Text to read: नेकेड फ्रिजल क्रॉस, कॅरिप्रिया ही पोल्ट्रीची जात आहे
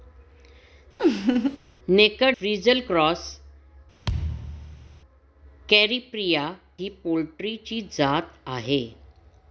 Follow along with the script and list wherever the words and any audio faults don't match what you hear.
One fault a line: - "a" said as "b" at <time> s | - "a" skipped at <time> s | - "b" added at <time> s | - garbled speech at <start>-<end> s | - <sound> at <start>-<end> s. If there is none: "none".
- laugh at 1.0-1.6 s
- thud at 4.0-5.0 s